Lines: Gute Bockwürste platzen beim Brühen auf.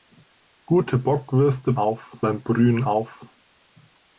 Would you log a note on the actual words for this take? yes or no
yes